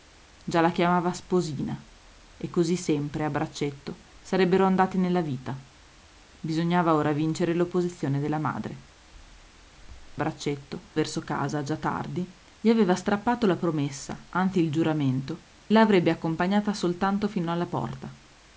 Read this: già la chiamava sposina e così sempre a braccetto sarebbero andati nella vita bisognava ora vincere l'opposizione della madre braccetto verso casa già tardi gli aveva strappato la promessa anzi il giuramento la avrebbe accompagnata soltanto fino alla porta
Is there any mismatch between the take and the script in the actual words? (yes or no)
no